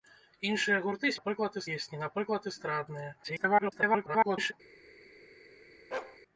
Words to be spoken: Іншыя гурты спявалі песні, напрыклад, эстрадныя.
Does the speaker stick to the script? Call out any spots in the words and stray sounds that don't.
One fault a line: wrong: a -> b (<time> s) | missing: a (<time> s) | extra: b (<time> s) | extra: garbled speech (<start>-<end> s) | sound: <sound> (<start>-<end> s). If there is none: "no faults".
wrong: спявалі -> напрыклад (1.2 s)
extra: garbled speech (3.2-4.5 s)
sound: bark (5.9-6.2 s)